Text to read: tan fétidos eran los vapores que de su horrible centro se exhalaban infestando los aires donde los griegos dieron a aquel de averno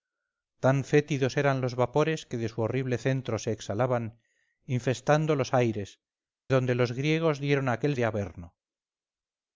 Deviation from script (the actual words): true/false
false